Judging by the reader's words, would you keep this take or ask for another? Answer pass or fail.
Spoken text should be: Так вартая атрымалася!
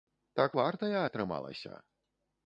pass